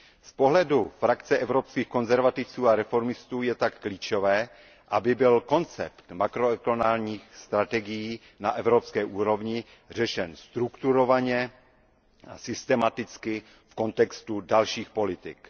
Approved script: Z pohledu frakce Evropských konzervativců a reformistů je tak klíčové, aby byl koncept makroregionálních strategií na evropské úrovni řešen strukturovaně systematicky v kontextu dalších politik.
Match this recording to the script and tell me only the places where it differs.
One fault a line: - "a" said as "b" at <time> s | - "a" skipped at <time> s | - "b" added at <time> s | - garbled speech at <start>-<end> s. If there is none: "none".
- "a" added at 12.3 s